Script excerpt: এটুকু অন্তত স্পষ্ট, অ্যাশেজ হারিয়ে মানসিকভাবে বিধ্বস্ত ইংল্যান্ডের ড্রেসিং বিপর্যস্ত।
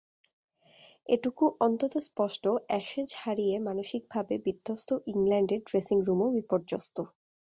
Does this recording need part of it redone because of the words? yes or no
yes